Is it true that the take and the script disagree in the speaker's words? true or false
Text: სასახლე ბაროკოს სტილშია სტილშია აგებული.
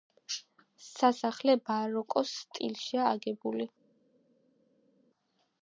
true